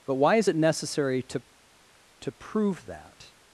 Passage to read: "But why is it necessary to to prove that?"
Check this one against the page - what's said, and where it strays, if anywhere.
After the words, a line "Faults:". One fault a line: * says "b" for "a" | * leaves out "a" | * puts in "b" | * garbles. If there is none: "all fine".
"But why is it necessary to to prove that?"
Faults:
all fine